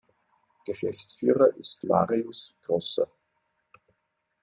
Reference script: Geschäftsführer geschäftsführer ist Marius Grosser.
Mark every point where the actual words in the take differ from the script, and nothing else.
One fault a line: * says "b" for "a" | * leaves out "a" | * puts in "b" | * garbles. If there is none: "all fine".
* leaves out "geschäftsführer"